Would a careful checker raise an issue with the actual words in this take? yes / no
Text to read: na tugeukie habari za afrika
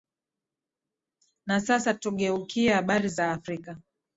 yes